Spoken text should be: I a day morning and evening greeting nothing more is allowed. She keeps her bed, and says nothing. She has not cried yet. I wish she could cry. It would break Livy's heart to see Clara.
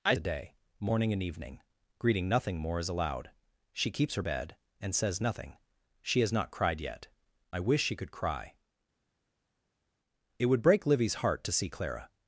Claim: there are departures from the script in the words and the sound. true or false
false